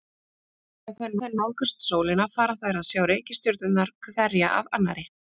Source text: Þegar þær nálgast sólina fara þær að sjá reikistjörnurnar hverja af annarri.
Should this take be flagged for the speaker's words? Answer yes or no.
yes